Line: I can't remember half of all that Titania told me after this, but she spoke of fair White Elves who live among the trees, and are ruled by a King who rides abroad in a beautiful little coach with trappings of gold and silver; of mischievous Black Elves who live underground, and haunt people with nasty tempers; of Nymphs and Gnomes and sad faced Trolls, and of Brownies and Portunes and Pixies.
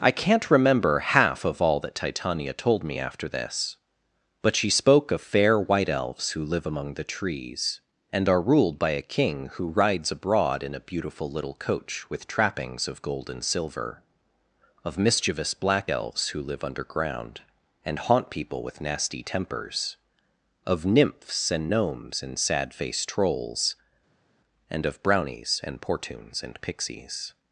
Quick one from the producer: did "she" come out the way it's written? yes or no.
yes